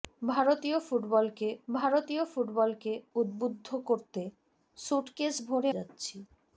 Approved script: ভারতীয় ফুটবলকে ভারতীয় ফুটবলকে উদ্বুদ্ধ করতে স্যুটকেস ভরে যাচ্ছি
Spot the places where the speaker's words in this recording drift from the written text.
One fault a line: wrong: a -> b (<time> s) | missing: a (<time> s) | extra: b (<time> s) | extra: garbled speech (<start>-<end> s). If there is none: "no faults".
no faults